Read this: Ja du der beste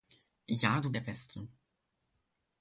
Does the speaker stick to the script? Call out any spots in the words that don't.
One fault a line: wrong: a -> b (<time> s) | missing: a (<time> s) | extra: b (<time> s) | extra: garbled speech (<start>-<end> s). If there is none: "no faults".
no faults